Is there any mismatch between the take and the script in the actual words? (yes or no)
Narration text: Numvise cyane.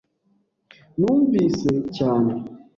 no